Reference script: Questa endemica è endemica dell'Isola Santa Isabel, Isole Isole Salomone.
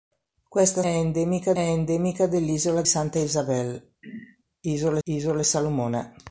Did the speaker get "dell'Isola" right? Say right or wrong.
right